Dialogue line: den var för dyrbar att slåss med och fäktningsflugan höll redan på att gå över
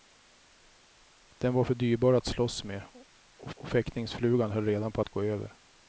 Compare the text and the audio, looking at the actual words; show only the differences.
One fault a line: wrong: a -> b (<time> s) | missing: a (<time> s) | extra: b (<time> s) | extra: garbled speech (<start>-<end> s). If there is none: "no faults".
extra: och (3.5 s)